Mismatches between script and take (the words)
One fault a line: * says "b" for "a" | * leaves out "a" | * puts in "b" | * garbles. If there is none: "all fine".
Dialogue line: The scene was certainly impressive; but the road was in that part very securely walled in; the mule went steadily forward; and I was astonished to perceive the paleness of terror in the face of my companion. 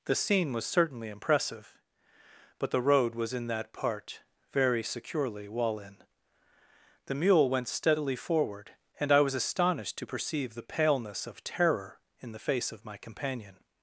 * says "wall" for "walled"